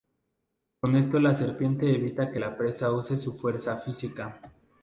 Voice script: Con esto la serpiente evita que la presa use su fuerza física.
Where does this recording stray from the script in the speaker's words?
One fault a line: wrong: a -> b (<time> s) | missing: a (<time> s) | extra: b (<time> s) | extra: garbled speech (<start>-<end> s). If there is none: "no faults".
no faults